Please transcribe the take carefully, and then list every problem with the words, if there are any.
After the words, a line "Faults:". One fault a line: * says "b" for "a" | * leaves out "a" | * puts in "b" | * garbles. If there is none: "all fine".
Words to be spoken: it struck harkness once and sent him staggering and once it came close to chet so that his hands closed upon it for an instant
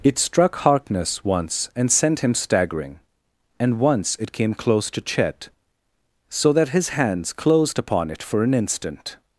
it struck harkness once and sent him staggering and once it came close to chet so that his hands closed upon it for an instant
Faults:
all fine